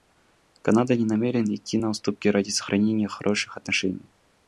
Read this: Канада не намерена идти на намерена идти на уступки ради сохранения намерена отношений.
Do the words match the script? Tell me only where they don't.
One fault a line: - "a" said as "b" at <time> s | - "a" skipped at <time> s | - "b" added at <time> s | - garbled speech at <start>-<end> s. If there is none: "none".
- "намерена идти на" skipped at 1.9 s
- "намерена" said as "хороших" at 3.1 s